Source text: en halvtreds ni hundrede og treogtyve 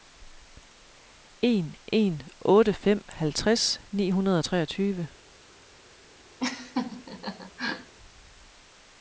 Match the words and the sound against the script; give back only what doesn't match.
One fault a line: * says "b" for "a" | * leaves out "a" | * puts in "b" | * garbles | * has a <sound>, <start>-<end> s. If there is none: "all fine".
* puts in "en otte fem"
* has a laugh, 6.4-7.9 s